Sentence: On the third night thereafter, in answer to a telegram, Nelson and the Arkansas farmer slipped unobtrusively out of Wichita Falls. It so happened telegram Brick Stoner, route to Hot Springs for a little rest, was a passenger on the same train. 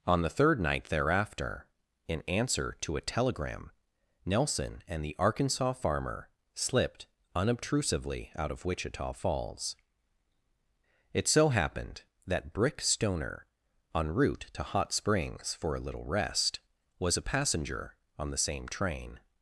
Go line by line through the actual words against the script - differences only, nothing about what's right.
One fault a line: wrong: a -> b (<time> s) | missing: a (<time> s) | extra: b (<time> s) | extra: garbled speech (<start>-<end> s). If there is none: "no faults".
wrong: telegram -> that (12.3 s)
extra: en (13.9 s)